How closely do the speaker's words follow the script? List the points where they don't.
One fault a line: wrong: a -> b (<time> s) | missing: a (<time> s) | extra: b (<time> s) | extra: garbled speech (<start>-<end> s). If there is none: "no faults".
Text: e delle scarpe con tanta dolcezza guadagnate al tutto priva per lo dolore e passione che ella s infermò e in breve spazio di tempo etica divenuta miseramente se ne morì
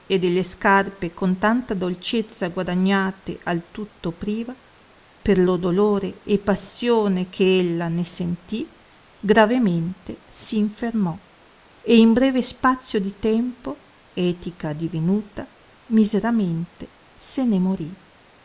extra: ne sentì gravemente (7.9 s)